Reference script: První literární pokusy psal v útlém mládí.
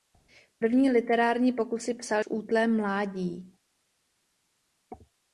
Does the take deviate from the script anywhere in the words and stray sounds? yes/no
no